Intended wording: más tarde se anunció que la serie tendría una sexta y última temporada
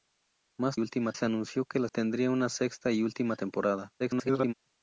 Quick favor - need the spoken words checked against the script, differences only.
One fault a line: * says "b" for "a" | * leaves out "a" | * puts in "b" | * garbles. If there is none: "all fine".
* says "última" for "tarde"
* leaves out "serie"
* garbles